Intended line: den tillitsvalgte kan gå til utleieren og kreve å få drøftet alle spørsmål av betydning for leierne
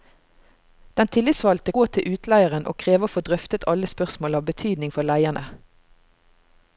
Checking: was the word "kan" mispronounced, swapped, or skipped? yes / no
yes